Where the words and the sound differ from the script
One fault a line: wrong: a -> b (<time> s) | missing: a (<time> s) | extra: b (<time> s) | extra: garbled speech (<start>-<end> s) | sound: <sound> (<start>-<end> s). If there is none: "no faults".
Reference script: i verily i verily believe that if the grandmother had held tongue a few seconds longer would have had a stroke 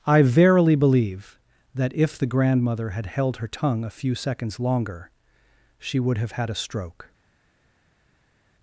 missing: i verily (0.7 s)
extra: her (3.4 s)
extra: she (5.8 s)